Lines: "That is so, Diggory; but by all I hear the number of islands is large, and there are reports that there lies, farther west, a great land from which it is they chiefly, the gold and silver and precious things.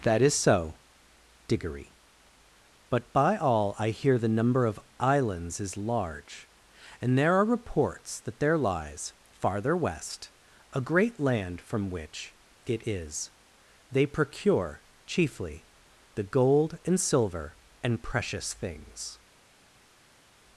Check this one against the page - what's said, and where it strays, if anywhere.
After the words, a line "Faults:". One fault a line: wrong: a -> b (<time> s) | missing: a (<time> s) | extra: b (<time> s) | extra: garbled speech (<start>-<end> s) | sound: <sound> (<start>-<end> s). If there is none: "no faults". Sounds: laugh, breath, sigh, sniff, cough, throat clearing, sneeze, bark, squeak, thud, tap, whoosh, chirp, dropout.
"That is so, Diggory; but by all I hear the number of islands is large, and there are reports that there lies, farther west, a great land from which it is they procure, chiefly, the gold and silver and precious things.
Faults:
extra: procure (14.1 s)